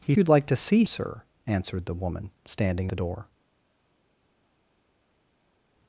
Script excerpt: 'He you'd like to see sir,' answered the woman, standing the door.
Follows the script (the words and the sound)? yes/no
yes